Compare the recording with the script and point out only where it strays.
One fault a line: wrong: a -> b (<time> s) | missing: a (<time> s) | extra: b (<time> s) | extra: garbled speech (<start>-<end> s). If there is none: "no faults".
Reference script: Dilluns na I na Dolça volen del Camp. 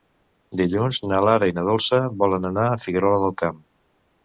extra: Lara (1.2 s)
extra: anar a Figuerola (2.5 s)